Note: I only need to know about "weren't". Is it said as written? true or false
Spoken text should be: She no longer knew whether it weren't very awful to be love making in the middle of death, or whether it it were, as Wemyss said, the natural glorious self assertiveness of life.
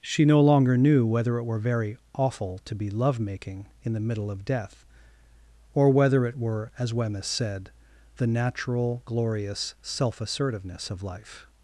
false